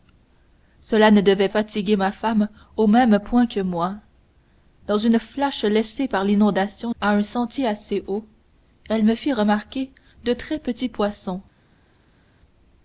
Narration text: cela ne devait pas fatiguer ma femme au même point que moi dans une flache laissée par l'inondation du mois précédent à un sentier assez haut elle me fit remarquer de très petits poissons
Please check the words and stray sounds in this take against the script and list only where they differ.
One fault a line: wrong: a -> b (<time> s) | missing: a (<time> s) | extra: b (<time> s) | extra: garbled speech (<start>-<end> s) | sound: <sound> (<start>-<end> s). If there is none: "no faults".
missing: pas (1.5 s)
missing: du mois précédent (6.9 s)